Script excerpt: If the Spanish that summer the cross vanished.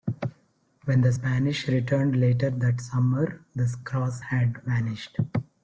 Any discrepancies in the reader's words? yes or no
yes